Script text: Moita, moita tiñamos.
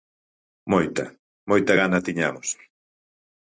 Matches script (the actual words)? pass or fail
fail